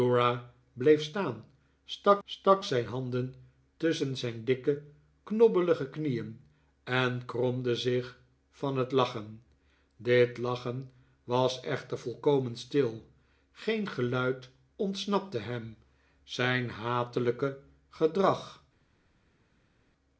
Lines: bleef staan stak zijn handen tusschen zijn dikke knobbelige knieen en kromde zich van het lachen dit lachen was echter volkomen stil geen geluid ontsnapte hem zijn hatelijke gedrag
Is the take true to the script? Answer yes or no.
no